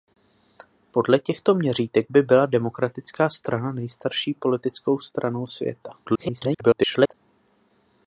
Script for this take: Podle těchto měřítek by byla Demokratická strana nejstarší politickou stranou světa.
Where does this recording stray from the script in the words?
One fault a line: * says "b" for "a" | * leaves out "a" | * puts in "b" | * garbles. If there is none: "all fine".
* garbles